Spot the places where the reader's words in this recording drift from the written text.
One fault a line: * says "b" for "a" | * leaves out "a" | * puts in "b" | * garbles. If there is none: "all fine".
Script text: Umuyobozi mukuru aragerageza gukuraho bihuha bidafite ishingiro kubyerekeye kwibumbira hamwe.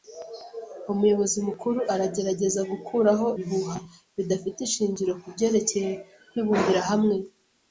all fine